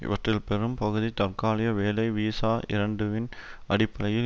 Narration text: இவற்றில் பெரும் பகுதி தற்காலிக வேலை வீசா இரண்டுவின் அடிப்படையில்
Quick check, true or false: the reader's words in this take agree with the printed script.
true